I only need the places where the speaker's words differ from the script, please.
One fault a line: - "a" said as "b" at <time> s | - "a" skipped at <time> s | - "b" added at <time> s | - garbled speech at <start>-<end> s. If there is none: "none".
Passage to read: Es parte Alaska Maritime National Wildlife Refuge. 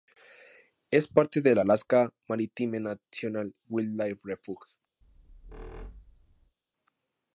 - "del" added at 1.4 s